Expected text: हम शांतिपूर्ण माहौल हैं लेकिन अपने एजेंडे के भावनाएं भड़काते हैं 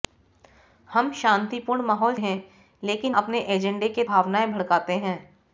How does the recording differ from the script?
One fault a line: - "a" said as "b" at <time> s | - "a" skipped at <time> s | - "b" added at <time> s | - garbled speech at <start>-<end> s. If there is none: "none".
none